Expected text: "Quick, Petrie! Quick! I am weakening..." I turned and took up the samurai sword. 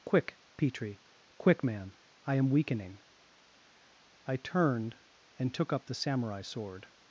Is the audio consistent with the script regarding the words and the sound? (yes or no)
no